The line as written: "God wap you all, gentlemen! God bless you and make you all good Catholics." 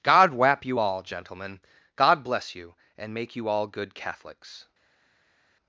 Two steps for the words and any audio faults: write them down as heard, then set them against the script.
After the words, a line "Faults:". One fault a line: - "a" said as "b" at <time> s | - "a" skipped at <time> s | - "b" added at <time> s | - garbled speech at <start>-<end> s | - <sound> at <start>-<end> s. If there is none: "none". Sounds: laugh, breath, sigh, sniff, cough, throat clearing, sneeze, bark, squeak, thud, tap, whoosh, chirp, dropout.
"God wap you all, gentlemen! God bless you and make you all good Catholics."
Faults:
none